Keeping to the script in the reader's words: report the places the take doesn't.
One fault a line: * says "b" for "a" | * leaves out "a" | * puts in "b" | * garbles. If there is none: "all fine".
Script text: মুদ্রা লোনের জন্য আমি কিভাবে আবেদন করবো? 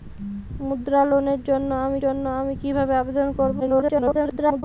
* puts in "জন্য আমি"
* garbles